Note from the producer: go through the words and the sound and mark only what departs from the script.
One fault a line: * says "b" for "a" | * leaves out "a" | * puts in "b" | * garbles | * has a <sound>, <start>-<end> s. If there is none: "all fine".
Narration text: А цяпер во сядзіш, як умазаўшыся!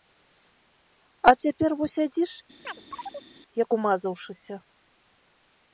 * has a chirp, 2.6-3.3 s